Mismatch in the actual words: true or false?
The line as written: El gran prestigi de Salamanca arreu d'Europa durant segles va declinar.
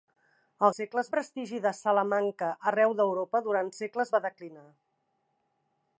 true